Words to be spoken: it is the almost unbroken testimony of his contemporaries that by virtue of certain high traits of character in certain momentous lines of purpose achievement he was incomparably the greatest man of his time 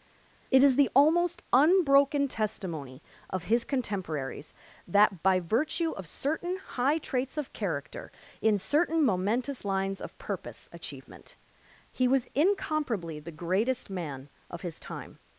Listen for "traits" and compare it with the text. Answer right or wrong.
right